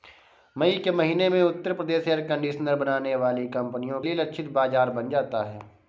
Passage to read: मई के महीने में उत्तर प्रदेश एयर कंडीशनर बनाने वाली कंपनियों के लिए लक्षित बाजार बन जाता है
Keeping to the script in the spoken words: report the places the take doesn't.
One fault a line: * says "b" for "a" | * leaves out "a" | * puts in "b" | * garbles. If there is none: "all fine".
* leaves out "के"